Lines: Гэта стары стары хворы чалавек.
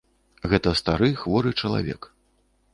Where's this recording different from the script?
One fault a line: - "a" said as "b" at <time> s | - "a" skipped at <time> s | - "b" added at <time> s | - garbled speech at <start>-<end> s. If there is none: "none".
- "стары" skipped at 1.1 s